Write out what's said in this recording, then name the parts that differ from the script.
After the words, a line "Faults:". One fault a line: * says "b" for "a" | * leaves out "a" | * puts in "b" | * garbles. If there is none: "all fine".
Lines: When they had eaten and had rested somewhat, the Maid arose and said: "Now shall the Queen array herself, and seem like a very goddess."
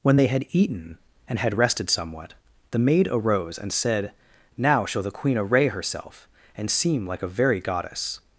When they had eaten and had rested somewhat, the Maid arose and said: "Now shall the Queen array herself, and seem like a very goddess."
Faults:
all fine